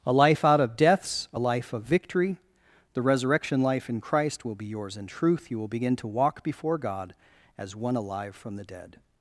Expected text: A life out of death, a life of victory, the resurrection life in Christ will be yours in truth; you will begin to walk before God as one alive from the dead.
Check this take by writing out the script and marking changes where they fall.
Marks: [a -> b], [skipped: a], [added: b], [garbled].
A life out of [death, -> deaths] a life of victory, the resurrection life in Christ will be yours in truth; you will begin to walk before God as one alive from the dead.